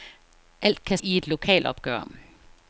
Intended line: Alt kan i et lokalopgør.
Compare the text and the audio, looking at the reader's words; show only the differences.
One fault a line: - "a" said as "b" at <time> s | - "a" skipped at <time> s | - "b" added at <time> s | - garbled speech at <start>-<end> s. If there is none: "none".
none